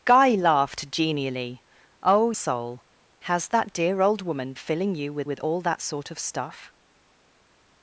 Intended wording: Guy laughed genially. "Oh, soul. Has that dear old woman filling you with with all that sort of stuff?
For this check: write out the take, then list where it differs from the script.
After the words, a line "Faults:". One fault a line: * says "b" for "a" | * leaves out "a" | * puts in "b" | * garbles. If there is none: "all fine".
Guy laughed genially. "Oh, soul. Has that dear old woman filling you with with all that sort of stuff?
Faults:
all fine